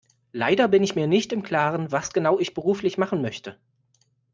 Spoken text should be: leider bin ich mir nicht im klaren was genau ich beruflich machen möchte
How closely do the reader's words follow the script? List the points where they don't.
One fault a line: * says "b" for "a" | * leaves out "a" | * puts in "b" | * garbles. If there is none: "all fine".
all fine